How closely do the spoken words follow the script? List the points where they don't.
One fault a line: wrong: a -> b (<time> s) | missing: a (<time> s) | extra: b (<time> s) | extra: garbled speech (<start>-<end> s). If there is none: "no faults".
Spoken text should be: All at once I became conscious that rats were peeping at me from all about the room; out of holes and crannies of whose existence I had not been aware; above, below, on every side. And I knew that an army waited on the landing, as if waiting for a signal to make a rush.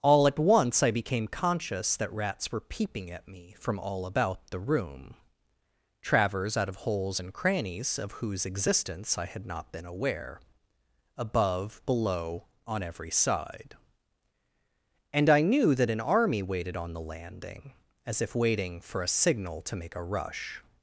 extra: travers (6.0 s)